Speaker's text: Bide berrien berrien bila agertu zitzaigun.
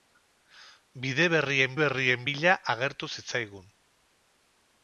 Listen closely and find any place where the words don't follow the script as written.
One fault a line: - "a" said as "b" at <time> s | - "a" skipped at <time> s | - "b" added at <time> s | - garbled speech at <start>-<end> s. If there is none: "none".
none